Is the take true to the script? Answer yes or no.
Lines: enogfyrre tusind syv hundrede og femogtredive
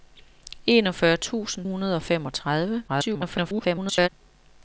no